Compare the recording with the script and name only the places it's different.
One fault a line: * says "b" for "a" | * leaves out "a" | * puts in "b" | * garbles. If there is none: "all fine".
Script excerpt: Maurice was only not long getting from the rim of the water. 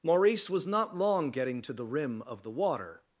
* leaves out "only"
* says "to" for "from"